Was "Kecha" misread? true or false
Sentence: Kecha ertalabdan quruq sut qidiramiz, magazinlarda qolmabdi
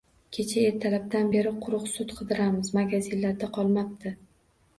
false